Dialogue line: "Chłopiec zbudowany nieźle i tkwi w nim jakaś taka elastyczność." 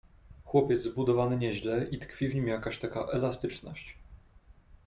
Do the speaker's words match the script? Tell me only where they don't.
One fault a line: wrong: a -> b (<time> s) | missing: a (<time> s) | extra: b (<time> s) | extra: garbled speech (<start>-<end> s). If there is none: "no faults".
no faults